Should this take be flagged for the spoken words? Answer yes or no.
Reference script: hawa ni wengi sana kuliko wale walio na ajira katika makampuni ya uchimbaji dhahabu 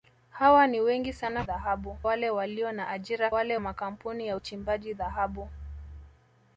yes